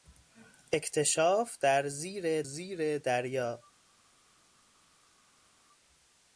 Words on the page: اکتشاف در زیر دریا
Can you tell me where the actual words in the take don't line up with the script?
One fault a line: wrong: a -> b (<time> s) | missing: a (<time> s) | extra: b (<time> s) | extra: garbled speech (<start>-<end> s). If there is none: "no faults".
extra: زیر (2.4 s)